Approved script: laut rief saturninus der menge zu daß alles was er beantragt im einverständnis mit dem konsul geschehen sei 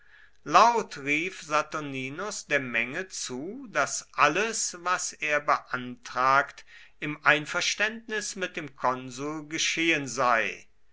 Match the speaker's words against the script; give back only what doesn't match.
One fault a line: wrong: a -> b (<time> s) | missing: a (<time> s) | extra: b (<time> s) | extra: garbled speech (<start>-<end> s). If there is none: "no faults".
no faults